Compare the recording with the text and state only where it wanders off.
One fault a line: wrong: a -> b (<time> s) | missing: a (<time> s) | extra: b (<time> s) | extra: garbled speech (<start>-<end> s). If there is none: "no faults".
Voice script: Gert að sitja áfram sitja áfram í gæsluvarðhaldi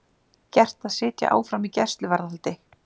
missing: sitja áfram (1.7 s)